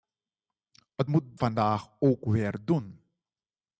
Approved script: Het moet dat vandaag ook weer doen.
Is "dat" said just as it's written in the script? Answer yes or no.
no